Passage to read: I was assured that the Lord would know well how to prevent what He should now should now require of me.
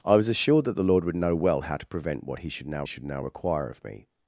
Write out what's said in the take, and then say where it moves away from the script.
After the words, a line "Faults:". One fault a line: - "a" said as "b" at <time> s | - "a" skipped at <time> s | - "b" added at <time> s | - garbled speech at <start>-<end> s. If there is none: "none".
I was assured that the Lord would know well how to prevent what He should now should now require of me.
Faults:
none